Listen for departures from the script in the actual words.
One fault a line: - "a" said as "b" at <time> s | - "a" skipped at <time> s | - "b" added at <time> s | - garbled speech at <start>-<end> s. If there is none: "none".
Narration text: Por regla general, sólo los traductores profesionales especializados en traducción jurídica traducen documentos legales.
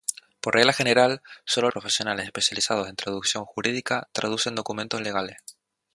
- "los traductores" skipped at 1.7 s